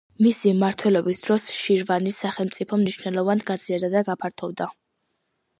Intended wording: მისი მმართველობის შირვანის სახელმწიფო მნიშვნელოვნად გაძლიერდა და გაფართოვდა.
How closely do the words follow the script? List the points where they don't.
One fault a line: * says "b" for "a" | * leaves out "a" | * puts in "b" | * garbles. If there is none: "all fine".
* puts in "დროს"